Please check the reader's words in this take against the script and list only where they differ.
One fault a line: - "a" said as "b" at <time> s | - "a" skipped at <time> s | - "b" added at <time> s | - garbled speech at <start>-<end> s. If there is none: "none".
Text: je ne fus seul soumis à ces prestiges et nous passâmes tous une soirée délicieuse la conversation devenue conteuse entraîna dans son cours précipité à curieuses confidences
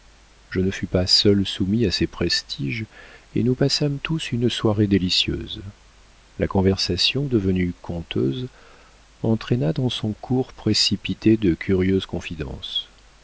- "pas" added at 0.8 s
- "à" said as "de" at 11.4 s